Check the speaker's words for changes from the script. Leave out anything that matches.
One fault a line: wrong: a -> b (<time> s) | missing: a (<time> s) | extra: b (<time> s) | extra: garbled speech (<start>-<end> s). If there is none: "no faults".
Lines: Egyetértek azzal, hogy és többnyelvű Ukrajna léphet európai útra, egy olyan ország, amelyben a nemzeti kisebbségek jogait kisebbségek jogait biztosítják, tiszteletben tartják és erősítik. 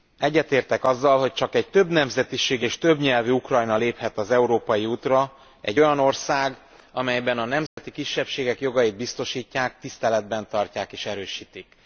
extra: csak egy többnemzetiségű (1.3 s)
extra: az (4.2 s)
missing: kisebbségek jogait (9.0 s)